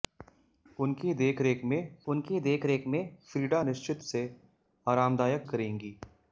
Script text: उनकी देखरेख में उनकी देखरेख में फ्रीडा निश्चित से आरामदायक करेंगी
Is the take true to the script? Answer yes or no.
yes